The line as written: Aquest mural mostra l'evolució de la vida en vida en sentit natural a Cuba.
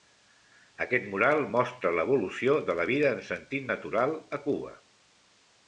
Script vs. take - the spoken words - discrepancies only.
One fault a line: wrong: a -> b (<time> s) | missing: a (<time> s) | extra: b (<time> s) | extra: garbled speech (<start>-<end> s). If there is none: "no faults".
missing: vida en (3.3 s)